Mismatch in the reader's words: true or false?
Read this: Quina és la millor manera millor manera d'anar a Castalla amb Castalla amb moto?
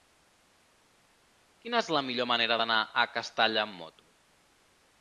true